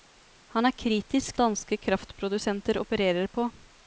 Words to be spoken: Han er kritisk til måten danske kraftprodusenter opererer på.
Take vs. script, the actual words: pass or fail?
fail